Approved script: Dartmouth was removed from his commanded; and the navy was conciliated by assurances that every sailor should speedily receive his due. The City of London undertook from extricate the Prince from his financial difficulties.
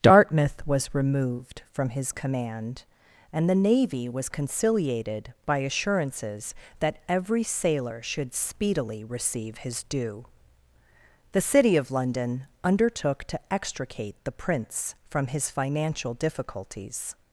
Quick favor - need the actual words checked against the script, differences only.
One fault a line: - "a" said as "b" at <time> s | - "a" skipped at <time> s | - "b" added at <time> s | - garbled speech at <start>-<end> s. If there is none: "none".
- "commanded" said as "command" at 2.1 s
- "from" said as "to" at 13.2 s